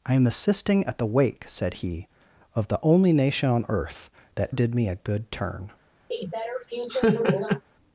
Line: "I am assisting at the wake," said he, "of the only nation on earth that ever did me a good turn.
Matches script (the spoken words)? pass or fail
fail